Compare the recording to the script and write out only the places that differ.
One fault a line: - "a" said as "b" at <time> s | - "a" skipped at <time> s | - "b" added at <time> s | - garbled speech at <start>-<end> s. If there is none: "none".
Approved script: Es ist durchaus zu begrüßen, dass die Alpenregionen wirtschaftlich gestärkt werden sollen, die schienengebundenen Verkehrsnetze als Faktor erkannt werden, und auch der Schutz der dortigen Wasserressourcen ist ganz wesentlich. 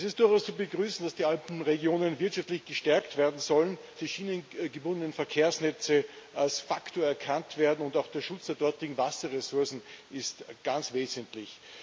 none